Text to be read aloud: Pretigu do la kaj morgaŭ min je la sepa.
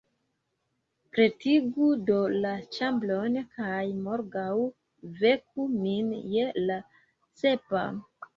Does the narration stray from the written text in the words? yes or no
yes